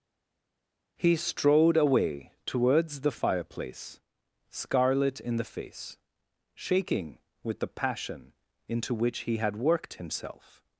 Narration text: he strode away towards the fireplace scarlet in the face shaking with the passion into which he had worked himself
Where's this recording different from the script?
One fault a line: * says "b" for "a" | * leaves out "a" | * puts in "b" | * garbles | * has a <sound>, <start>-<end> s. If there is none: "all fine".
all fine